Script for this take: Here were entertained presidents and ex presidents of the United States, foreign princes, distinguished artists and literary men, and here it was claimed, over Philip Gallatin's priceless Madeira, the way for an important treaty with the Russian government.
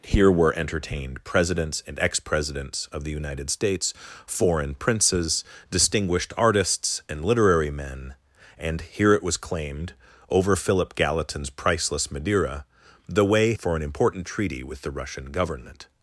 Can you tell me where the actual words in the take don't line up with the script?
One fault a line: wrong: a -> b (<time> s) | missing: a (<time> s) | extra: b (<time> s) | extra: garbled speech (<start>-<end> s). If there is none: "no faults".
no faults